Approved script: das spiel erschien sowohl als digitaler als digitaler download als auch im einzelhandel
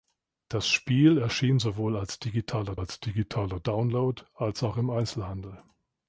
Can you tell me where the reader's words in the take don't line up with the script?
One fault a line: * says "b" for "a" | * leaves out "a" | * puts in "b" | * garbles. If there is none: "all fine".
all fine